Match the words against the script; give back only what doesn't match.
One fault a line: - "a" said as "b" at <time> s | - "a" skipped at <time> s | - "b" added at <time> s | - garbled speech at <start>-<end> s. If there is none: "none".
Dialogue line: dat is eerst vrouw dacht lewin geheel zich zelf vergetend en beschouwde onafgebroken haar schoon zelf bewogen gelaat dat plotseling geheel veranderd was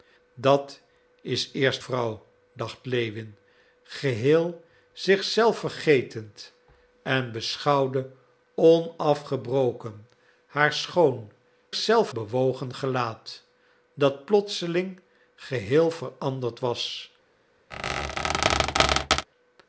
none